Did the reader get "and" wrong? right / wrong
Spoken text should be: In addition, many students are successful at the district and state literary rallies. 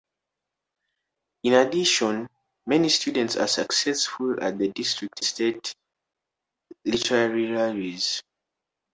wrong